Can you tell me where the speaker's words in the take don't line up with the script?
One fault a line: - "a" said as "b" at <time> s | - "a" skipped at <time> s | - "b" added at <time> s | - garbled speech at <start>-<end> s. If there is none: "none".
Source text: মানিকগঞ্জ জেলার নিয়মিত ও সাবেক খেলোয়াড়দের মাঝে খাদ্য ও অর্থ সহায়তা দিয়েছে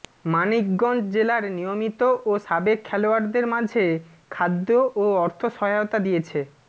none